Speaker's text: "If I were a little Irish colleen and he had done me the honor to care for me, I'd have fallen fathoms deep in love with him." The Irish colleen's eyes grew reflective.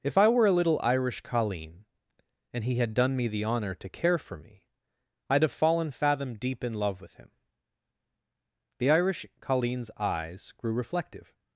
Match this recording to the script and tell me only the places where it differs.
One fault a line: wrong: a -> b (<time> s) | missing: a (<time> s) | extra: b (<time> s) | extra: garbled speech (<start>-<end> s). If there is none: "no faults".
wrong: fathoms -> fathom (5.9 s)